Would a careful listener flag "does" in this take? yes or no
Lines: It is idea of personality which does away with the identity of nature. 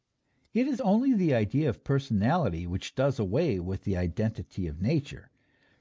no